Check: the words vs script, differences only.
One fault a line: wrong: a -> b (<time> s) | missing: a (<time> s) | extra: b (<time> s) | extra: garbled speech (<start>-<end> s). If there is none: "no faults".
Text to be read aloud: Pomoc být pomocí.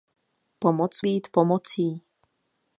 no faults